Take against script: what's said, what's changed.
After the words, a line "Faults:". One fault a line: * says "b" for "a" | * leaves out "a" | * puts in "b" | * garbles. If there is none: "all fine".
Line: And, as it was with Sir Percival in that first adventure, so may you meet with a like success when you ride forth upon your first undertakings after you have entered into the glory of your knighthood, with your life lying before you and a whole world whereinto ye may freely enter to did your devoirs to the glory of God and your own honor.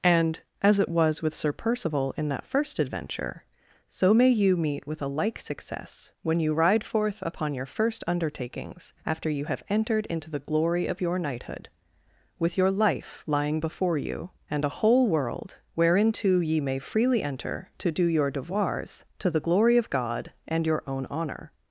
And, as it was with Sir Percival in that first adventure, so may you meet with a like success when you ride forth upon your first undertakings after you have entered into the glory of your knighthood, with your life lying before you and a whole world whereinto ye may freely enter to do your devoirs to the glory of God and your own honor.
Faults:
* says "do" for "did"